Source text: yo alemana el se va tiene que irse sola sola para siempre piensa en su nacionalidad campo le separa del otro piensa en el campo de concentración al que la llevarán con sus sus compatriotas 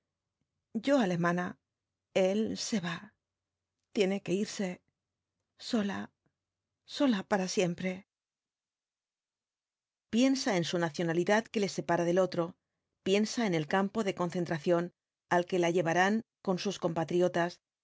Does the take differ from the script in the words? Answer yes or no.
yes